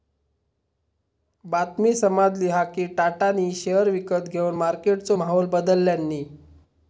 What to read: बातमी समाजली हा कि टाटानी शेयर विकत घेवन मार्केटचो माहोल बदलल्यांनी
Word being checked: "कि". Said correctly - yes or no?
yes